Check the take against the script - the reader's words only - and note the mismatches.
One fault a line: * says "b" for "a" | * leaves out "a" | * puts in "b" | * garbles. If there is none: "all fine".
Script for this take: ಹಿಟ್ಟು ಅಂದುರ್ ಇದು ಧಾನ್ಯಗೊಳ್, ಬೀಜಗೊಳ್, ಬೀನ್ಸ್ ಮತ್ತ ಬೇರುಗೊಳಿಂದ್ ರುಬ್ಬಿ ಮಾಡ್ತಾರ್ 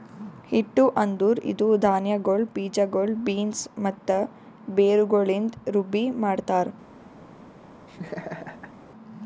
all fine